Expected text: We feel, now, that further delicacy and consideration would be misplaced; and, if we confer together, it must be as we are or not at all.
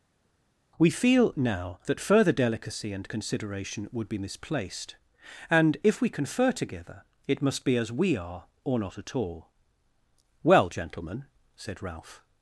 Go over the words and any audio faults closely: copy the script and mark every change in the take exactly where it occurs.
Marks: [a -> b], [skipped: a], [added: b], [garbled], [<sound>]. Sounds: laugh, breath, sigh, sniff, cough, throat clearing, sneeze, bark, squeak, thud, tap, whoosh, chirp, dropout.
We feel, now, that further delicacy and consideration would be misplaced; and, if we confer together, it must be as we are or not at all. [added: Well gentlemen said Ralph]